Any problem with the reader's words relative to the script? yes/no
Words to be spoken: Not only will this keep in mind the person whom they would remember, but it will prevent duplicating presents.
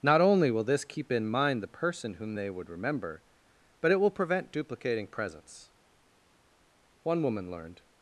yes